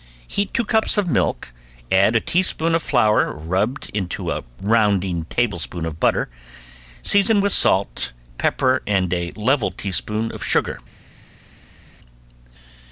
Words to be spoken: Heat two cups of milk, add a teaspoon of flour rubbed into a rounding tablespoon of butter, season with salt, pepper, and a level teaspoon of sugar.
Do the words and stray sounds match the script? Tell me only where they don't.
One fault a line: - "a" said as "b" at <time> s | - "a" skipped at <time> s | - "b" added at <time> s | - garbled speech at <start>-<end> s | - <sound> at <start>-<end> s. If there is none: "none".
none